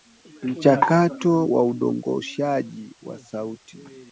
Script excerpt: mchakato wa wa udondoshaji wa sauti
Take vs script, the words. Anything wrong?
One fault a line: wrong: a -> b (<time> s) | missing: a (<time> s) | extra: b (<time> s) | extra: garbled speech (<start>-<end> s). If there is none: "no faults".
missing: wa (1.6 s)